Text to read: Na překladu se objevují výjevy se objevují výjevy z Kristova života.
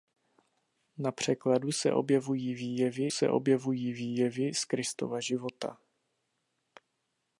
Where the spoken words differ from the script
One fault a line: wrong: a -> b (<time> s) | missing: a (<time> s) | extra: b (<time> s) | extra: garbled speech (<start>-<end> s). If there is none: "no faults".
no faults